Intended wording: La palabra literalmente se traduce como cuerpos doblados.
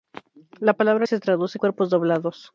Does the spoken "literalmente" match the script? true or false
false